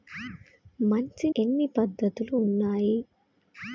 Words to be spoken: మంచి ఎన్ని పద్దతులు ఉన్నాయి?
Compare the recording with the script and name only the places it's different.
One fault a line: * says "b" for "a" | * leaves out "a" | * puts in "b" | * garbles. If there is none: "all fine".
all fine